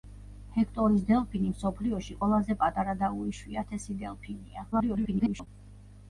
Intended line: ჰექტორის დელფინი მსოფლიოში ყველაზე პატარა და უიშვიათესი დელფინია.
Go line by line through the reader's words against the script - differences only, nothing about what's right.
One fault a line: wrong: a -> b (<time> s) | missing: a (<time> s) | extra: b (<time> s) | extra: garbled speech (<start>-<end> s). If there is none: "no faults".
extra: garbled speech (4.7-5.5 s)